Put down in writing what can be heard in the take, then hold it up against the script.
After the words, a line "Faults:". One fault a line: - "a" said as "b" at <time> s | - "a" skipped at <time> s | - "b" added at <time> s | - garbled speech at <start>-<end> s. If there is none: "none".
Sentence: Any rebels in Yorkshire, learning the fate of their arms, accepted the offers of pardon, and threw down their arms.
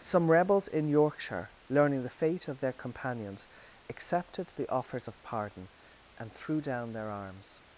Some rebels in Yorkshire, learning the fate of their companions, accepted the offers of pardon, and threw down their arms.
Faults:
- "Any" said as "Some" at 0.0 s
- "arms" said as "companions" at 2.7 s